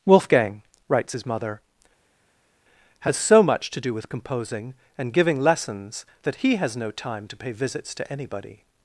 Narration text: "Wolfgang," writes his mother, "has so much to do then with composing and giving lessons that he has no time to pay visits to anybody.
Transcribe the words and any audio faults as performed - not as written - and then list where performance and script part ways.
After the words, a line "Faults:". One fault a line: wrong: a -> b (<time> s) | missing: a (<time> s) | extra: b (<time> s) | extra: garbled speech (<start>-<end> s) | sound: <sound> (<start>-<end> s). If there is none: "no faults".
"Wolfgang," writes his mother, "has so much to do with composing and giving lessons that he has no time to pay visits to anybody.
Faults:
missing: then (3.9 s)